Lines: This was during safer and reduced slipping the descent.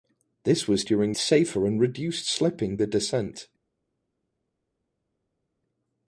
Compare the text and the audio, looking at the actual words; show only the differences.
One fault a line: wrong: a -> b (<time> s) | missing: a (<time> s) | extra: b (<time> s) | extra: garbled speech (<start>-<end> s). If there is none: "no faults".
no faults